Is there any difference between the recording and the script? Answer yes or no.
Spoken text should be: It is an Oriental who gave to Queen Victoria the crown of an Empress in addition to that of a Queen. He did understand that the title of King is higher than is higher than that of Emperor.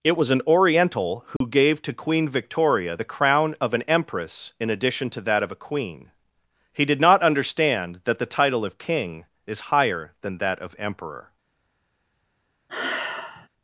yes